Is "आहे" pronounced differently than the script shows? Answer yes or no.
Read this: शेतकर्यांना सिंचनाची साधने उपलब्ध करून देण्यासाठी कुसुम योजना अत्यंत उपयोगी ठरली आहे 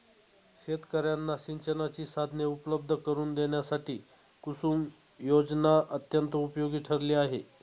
no